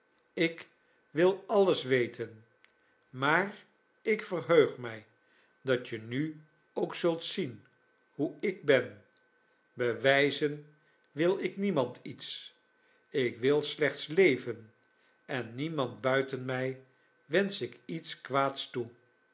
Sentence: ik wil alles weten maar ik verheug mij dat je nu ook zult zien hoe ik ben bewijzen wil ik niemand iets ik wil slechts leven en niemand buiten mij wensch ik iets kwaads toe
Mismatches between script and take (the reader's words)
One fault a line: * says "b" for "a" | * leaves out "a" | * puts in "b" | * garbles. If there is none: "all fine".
all fine